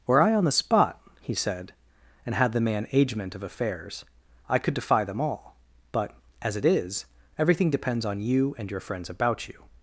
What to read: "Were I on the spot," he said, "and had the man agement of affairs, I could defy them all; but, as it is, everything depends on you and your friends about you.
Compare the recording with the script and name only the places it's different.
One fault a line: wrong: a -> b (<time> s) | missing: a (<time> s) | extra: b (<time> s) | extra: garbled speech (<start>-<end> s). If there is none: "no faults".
no faults